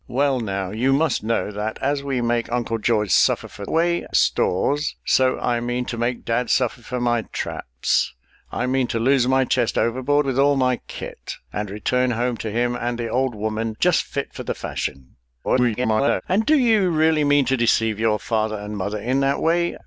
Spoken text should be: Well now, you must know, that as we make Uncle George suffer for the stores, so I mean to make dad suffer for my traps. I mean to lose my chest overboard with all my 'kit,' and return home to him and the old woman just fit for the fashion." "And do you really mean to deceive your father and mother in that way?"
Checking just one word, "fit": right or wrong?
right